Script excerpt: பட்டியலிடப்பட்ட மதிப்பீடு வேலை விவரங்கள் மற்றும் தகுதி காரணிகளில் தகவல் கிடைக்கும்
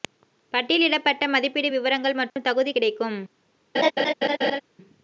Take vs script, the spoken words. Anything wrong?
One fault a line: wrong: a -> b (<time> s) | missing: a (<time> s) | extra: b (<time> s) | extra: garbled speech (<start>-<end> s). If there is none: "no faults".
missing: வேலை (1.7 s)
missing: காரணிகளில் தகவல் (2.7 s)